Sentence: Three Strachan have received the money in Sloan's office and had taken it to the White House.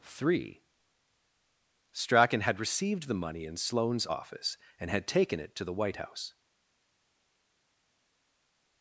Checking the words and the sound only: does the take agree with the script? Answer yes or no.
no